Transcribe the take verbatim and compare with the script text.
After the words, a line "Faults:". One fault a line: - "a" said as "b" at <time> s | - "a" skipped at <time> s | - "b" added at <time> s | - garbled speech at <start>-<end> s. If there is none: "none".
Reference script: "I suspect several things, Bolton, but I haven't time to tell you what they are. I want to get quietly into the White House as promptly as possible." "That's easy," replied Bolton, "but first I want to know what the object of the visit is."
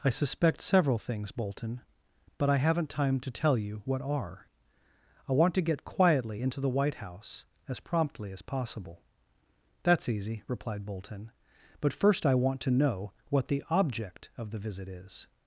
"I suspect several things, Bolton, but I haven't time to tell you what are. I want to get quietly into the White House as promptly as possible." "That's easy," replied Bolton, "but first I want to know what the object of the visit is."
Faults:
- "they" skipped at 4.0 s